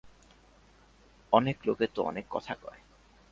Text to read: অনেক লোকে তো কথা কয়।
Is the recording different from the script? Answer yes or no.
yes